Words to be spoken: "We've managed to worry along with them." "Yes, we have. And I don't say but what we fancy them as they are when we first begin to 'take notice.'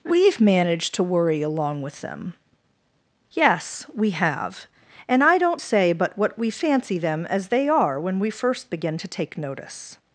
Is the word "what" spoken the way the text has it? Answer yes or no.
yes